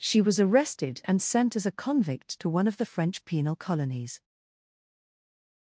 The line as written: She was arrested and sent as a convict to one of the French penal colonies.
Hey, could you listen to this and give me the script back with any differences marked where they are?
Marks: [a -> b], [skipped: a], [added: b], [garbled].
She was arrested and sent as a convict to one of the French penal colonies.